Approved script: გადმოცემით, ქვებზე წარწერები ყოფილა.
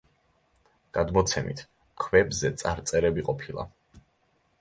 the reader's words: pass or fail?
pass